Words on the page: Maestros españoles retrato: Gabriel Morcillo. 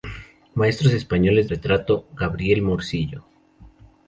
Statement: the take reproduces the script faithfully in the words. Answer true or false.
true